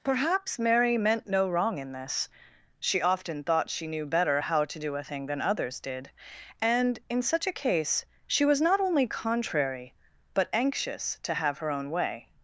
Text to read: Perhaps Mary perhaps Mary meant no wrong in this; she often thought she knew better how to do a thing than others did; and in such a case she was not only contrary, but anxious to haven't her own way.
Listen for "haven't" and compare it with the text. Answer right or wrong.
wrong